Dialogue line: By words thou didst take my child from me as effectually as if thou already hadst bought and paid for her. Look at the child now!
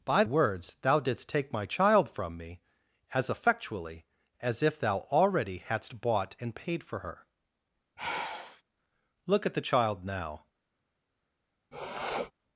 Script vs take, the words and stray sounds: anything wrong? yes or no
yes